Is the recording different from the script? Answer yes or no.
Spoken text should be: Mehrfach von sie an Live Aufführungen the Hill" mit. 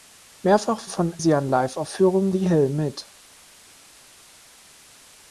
no